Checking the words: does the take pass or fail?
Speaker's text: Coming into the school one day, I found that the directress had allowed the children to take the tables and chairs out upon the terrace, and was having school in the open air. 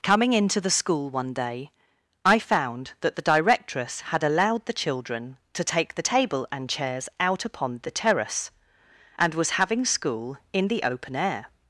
fail